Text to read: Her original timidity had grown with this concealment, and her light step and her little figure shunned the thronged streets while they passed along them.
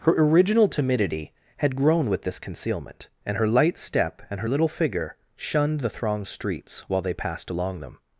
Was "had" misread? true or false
false